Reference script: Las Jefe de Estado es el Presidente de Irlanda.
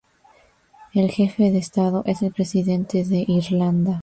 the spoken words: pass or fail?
fail